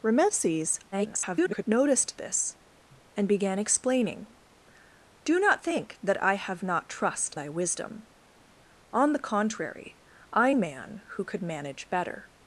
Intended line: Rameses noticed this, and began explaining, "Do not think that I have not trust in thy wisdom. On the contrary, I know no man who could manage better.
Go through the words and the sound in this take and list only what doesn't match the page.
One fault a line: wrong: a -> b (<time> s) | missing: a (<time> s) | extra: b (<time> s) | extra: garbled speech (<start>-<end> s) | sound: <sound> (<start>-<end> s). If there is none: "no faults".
extra: garbled speech (0.9-1.6 s)
missing: in (7.3 s)
missing: know no (10.5 s)